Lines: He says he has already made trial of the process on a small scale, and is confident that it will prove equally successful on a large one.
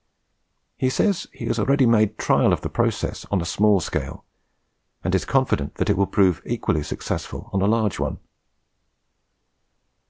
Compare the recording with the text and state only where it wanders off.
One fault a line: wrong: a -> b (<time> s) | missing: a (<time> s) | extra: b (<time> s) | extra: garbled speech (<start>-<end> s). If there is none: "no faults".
no faults